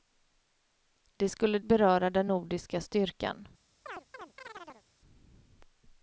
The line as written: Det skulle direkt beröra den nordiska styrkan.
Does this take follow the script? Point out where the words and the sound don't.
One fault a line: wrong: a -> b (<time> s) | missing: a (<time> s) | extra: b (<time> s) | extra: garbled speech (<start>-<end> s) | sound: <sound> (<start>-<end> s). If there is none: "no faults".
missing: direkt (1.6 s)
sound: chirp (3.9-4.9 s)